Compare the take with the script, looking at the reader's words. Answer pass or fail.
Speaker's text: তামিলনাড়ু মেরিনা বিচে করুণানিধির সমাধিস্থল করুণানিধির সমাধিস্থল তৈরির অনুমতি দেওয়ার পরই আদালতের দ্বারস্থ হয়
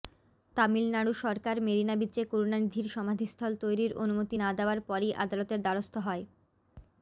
fail